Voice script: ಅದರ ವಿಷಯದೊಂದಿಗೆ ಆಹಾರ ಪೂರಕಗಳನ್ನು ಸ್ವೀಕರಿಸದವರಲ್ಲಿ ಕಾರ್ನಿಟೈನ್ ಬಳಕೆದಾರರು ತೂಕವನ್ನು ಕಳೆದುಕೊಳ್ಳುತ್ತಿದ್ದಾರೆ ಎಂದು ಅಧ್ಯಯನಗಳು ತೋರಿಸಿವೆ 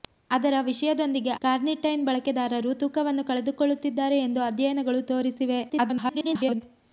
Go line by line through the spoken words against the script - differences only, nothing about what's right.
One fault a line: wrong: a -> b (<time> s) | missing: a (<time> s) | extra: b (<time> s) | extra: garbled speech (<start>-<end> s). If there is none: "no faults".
missing: ಆಹಾರ ಪೂರಕಗಳನ್ನು ಸ್ವೀಕರಿಸದವರಲ್ಲಿ (1.3 s)
extra: garbled speech (5.7-6.6 s)